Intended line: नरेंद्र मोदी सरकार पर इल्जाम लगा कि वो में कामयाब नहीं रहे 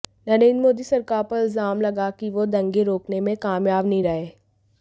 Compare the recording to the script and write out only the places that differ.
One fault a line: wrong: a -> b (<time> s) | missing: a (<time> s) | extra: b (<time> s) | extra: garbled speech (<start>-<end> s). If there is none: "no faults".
extra: दंगे रोकने (2.6 s)